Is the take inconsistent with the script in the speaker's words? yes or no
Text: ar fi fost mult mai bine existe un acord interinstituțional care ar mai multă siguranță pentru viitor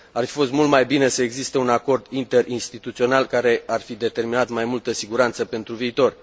yes